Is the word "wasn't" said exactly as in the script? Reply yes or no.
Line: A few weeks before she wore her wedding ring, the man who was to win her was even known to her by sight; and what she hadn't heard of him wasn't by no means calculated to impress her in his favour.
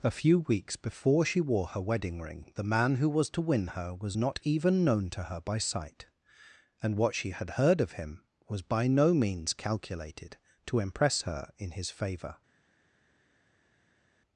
no